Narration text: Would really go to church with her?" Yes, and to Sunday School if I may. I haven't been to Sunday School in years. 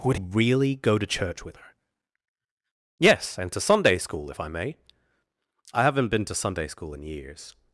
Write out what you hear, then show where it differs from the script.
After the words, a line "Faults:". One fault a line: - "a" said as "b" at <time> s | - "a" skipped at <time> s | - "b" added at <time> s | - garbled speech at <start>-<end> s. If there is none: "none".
Would really go to church with her?" Yes, and to Sunday School if I may. I haven't been to Sunday School in years.
Faults:
none